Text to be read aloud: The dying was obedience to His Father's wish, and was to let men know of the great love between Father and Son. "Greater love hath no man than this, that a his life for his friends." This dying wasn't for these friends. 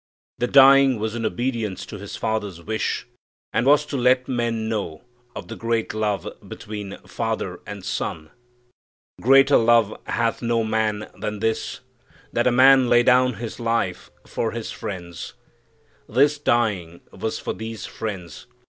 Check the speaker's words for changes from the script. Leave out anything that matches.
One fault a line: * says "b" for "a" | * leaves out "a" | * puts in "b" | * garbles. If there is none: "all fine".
* puts in "in"
* puts in "man lay down"
* says "was" for "wasn't"